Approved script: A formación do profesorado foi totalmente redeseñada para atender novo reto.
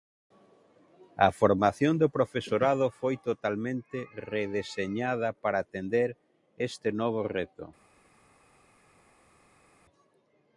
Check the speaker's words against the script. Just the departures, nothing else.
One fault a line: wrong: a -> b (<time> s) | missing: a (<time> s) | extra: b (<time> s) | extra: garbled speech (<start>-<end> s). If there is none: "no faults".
extra: este (6.7 s)